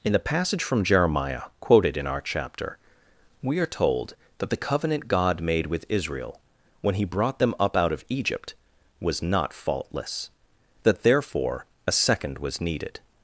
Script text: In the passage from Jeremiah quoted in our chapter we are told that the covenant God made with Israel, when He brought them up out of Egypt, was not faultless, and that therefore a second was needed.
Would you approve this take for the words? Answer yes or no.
no